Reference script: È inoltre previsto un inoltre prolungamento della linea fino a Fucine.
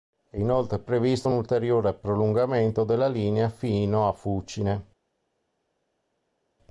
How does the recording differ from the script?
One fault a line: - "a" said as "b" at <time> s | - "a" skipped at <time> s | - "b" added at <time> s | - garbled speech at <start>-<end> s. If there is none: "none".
- "inoltre" said as "ulteriore" at 1.3 s